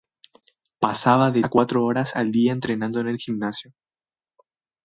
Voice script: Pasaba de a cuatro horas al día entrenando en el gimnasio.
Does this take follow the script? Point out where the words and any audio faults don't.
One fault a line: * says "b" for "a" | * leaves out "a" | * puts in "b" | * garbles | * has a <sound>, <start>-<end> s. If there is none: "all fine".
all fine